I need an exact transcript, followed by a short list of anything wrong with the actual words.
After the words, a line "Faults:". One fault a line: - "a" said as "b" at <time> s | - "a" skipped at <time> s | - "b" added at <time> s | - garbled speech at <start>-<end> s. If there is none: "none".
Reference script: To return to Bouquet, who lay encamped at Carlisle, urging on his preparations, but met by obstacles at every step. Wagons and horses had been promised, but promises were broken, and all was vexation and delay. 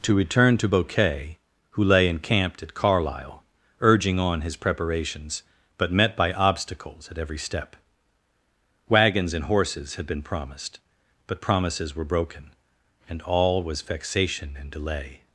To return to Bouquet, who lay encamped at Carlisle, urging on his preparations, but met by obstacles at every step. Wagons and horses had been promised, but promises were broken, and all was vexation and delay.
Faults:
none